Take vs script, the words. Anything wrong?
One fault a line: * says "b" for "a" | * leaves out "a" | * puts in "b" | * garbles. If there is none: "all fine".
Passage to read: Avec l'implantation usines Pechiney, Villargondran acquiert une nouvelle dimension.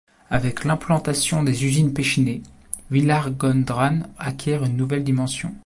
* puts in "des"